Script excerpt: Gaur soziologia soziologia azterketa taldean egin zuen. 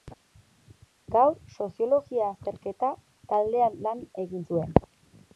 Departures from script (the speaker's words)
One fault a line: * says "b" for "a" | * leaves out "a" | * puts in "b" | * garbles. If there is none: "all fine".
* leaves out "soziologia"
* puts in "lan"